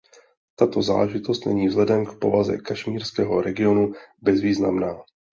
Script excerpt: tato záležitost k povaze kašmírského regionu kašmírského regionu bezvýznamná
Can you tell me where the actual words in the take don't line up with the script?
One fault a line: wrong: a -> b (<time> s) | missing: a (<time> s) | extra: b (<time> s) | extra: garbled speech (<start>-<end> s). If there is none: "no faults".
extra: není vzhledem (1.4 s)
missing: kašmírského regionu (3.9 s)